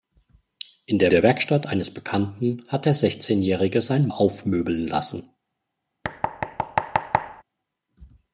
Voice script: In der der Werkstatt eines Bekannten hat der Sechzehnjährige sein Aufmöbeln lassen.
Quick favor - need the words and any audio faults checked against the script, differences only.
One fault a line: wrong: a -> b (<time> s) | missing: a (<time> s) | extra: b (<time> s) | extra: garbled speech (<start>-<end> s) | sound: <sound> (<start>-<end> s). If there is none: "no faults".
sound: thud (6.0-7.4 s)